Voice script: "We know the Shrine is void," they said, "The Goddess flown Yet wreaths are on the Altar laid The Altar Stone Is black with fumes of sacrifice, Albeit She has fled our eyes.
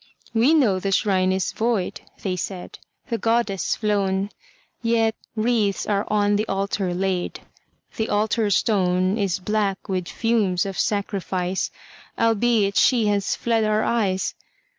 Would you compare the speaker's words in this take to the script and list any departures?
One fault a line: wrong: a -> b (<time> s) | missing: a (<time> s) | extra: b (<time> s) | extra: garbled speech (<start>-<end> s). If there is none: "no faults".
no faults